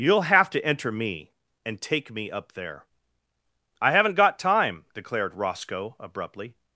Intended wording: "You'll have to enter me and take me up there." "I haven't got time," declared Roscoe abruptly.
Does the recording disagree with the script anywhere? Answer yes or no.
no